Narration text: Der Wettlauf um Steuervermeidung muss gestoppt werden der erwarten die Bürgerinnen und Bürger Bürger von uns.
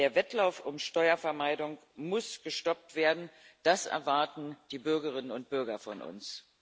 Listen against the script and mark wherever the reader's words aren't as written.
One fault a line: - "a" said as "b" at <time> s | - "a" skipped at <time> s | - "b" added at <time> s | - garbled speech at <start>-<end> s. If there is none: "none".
- "der" said as "das" at 3.6 s
- "Bürger" skipped at 5.8 s